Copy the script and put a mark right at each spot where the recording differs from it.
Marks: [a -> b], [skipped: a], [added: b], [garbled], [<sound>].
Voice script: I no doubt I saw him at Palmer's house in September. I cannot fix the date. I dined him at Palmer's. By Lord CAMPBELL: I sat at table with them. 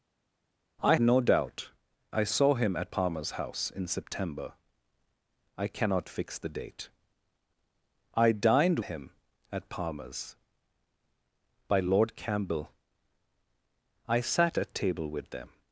I no doubt I saw him at Palmer's house in September. I cannot fix the date. I dined him at Palmer's. By Lord CAMPBELL: I sat at table with them.